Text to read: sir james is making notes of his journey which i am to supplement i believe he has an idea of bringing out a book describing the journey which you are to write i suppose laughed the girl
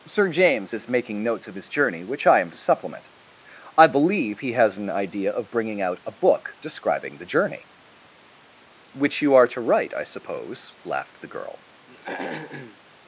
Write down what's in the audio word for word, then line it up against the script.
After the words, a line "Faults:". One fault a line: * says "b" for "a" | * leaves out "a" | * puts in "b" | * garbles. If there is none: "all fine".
sir james is making notes of his journey which i am to supplement i believe he has an idea of bringing out a book describing the journey which you are to write i suppose laughed the girl
Faults:
all fine